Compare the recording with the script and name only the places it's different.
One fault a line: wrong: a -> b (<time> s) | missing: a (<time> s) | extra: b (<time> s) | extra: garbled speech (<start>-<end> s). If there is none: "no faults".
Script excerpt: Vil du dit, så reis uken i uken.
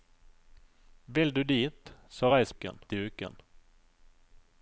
no faults